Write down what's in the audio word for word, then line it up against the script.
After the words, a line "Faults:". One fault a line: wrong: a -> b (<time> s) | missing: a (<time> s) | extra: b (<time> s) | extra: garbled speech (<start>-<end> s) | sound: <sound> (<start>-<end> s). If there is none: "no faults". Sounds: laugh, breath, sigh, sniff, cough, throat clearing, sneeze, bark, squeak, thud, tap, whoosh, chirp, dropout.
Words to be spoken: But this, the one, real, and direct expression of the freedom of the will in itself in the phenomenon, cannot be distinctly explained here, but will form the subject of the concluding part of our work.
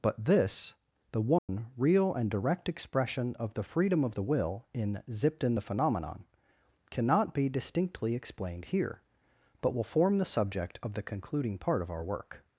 But this, the one, real, and direct expression of the freedom of the will in zipped in the phenomenon, cannot be distinctly explained here, but will form the subject of the concluding part of our work.
Faults:
sound: dropout (1.4-1.5 s)
wrong: itself -> zipped (5.1 s)